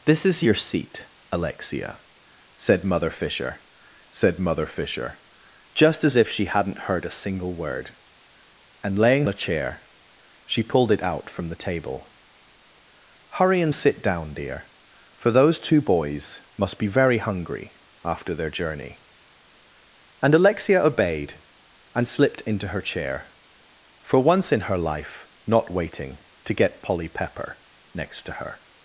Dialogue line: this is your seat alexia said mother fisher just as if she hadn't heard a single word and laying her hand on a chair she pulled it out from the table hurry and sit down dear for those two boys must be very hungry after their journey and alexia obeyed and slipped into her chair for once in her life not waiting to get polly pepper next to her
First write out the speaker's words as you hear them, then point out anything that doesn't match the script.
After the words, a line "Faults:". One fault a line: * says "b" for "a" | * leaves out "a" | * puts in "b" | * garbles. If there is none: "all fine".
this is your seat alexia said mother fisher said mother fisher just as if she hadn't heard a single word and laying a chair she pulled it out from the table hurry and sit down dear for those two boys must be very hungry after their journey and alexia obeyed and slipped into her chair for once in her life not waiting to get polly pepper next to her
Faults:
* puts in "said mother fisher"
* leaves out "her hand on"